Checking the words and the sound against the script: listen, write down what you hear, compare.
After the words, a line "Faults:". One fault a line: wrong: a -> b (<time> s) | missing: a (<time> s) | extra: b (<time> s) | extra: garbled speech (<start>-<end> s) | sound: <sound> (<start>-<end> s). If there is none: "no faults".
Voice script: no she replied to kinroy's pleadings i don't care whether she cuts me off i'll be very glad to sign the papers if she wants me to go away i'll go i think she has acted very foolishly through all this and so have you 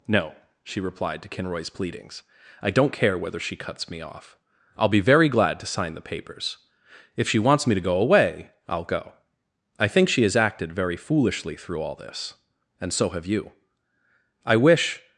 no she replied to kinroy's pleadings i don't care whether she cuts me off i'll be very glad to sign the papers if she wants me to go away i'll go i think she has acted very foolishly through all this and so have you i wish
Faults:
extra: i wish (14.4 s)